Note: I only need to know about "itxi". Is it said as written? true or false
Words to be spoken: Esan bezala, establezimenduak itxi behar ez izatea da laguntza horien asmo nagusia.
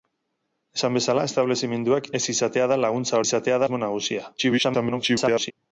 false